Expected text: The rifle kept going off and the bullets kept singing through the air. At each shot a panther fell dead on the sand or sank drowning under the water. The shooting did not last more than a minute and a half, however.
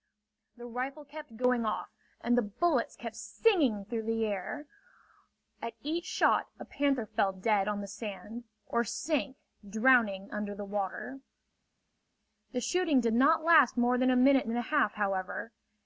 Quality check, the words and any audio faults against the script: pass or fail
pass